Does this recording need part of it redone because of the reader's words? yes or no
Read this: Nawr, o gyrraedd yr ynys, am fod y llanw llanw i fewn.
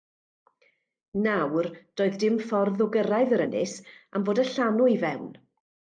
yes